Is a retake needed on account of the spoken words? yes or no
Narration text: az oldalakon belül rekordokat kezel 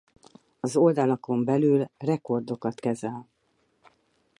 no